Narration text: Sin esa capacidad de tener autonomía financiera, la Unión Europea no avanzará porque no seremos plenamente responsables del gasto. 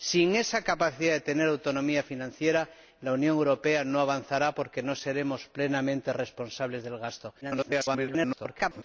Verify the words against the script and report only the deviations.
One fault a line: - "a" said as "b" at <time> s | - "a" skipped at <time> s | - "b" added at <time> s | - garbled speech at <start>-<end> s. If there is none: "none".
- garbled speech at 7.4-8.8 s